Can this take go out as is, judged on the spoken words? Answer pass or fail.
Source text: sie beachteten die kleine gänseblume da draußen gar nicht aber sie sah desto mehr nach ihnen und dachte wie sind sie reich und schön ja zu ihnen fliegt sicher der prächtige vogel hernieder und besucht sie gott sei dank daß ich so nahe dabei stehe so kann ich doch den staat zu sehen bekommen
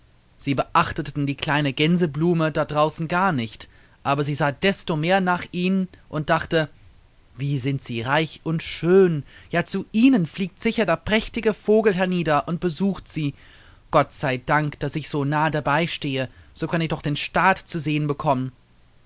pass